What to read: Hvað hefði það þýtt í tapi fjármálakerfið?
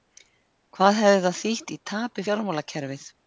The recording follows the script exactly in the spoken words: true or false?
true